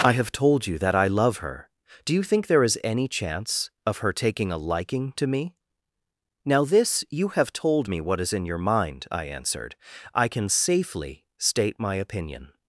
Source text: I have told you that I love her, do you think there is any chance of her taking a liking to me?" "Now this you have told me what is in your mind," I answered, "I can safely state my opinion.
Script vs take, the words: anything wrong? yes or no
no